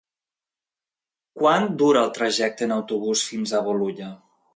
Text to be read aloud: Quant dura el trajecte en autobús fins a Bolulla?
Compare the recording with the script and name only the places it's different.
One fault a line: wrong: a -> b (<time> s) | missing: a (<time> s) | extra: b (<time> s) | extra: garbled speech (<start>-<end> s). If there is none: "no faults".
no faults